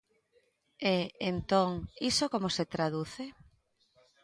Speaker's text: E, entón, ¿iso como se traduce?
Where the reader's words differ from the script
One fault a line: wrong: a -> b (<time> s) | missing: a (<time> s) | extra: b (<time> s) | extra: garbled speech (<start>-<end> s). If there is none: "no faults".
no faults